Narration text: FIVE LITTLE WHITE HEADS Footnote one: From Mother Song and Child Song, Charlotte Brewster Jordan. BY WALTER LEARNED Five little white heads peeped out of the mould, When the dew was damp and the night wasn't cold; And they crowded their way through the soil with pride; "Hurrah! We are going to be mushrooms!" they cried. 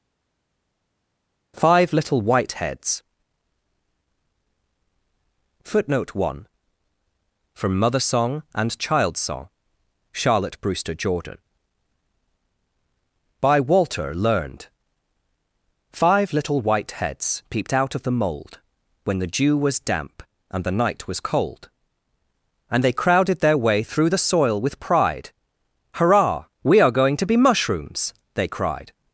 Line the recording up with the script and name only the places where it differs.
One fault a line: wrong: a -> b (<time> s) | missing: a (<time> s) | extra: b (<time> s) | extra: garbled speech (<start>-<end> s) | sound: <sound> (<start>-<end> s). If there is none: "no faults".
wrong: wasn't -> was (21.1 s)